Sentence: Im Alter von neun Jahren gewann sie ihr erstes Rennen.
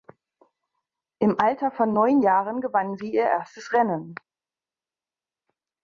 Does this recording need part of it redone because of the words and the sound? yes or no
no